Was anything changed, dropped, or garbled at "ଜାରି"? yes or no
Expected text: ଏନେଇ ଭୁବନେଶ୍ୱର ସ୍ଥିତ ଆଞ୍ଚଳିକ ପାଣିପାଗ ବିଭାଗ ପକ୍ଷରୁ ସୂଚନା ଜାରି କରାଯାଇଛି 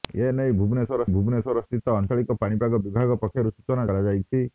yes